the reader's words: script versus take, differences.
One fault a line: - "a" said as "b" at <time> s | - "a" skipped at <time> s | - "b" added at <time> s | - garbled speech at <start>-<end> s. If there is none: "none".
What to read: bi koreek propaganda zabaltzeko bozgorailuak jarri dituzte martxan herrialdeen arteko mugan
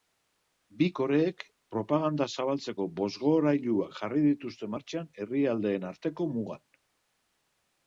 none